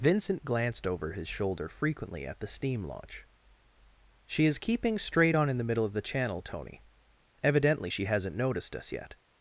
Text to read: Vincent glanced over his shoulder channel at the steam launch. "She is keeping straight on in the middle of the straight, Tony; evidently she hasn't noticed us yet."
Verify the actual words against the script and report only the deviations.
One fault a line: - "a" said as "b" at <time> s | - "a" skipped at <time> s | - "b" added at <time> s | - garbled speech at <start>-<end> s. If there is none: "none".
- "channel" said as "frequently" at 1.7 s
- "straight" said as "channel" at 6.0 s